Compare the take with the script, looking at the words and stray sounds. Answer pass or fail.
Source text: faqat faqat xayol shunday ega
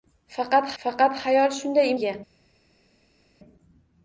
pass